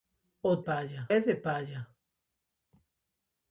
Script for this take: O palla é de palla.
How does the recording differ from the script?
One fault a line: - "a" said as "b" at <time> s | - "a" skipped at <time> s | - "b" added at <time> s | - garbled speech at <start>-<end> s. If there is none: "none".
none